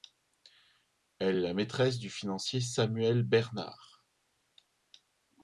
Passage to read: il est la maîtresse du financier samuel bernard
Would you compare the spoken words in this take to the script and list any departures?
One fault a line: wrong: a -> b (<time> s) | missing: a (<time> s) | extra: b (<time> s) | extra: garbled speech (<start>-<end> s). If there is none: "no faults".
wrong: il -> elle (1.2 s)